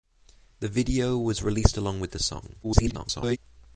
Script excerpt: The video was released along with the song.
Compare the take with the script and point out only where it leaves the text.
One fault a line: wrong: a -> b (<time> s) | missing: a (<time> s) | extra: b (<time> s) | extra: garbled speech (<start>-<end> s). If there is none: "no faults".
extra: garbled speech (2.6-3.4 s)